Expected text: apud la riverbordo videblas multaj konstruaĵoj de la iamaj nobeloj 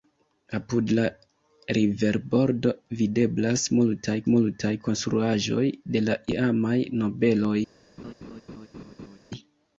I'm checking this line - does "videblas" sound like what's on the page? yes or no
yes